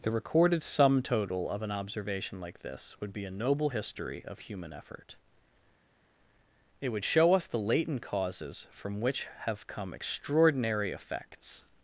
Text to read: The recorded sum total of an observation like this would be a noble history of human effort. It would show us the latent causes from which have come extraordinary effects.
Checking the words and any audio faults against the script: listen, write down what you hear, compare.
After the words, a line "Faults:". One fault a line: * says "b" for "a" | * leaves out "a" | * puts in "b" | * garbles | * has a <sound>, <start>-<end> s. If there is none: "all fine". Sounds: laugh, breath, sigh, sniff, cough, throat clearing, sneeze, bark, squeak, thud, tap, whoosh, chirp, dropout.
The recorded sum total of an observation like this would be a noble history of human effort. It would show us the latent causes from which have come extraordinary effects.
Faults:
all fine